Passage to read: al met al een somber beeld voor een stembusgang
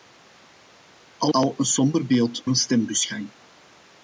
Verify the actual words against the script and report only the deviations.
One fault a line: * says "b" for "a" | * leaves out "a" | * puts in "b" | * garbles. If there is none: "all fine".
* leaves out "met"
* leaves out "voor"